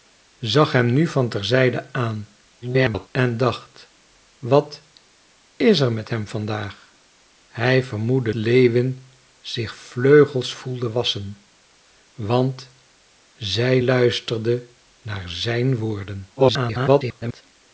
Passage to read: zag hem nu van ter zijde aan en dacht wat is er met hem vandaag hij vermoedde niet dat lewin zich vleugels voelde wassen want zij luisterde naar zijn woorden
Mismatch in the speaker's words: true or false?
true